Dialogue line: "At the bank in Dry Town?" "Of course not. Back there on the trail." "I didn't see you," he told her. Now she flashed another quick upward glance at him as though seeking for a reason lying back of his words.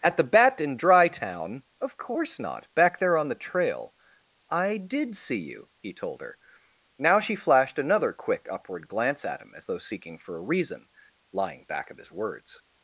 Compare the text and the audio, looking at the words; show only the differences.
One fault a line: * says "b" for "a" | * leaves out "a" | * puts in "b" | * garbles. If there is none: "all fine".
* says "bat" for "bank"
* says "did" for "didn't"